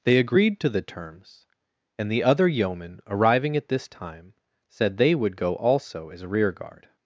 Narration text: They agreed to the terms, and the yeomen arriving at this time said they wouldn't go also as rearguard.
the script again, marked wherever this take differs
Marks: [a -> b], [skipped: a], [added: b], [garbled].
They agreed to the terms, and the [added: other] yeomen arriving at this time said they [wouldn't -> would] go also as rearguard.